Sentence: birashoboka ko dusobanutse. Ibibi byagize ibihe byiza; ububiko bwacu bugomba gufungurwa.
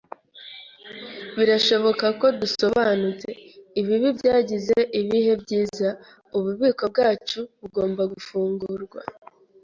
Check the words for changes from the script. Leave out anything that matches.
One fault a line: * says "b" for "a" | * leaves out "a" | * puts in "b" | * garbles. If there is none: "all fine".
all fine